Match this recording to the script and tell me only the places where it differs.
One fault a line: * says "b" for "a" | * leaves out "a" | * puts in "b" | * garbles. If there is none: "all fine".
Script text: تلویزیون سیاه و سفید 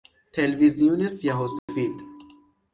all fine